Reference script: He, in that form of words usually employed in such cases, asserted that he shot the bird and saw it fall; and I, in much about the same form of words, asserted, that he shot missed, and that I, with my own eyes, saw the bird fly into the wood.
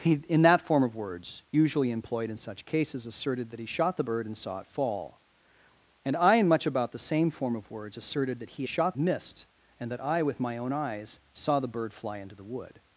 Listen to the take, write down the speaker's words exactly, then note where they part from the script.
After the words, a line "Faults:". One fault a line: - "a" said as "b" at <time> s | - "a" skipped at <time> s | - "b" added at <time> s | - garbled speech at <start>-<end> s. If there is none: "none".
He, in that form of words usually employed in such cases, asserted that he shot the bird and saw it fall; and I, in much about the same form of words, asserted, that he shot missed, and that I, with my own eyes, saw the bird fly into the wood.
Faults:
none